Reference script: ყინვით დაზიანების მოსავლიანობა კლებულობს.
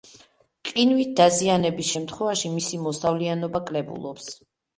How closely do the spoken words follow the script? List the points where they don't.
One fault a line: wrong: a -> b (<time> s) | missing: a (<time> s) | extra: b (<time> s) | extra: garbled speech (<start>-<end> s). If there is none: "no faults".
extra: შემთხვევაში მისი (1.9 s)